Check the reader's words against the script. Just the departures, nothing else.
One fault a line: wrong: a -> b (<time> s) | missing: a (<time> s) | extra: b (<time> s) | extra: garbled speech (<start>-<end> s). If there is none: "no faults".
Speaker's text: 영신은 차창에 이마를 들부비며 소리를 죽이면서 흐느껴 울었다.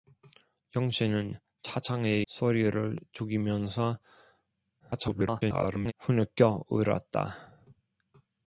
missing: 이마를 들부비며 (2.2 s)
extra: garbled speech (4.8-5.9 s)